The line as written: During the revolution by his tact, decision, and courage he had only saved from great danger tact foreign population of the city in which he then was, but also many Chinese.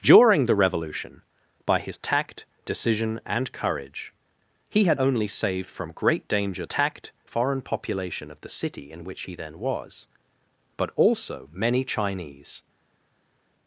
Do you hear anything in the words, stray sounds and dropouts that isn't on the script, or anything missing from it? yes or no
no